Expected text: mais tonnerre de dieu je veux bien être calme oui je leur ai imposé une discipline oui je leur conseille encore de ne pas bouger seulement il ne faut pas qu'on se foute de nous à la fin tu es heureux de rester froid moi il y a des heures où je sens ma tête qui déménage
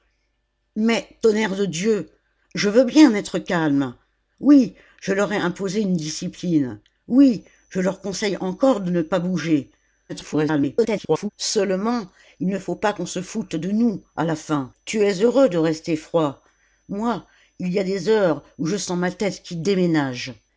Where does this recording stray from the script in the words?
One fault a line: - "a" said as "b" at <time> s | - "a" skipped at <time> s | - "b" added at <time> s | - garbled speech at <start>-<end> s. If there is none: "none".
- garbled speech at 10.1-11.3 s